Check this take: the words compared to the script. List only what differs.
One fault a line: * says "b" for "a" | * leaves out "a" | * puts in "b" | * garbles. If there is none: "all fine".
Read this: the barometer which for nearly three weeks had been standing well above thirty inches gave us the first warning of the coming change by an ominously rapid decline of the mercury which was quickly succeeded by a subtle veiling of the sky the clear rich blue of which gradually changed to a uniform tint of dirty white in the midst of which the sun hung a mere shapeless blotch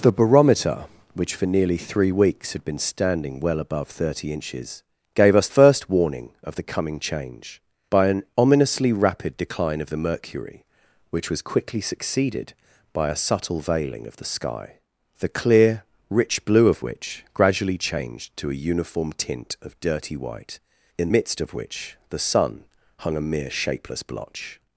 * leaves out "the"
* leaves out "the"